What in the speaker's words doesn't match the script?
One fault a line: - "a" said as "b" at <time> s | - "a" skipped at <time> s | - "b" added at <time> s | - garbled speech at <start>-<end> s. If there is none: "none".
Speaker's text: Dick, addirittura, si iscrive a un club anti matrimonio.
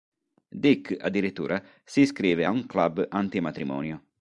none